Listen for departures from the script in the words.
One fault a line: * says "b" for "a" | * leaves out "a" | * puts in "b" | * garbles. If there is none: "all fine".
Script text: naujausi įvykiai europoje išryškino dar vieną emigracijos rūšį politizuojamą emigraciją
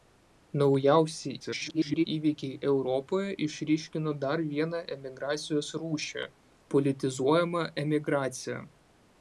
* garbles